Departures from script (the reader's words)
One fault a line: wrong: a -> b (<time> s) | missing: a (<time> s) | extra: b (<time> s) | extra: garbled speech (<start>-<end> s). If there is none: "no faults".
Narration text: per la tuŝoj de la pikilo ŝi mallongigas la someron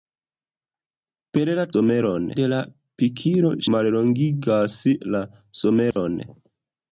wrong: tuŝoj -> someron (1.8 s)
missing: ŝi (3.5 s)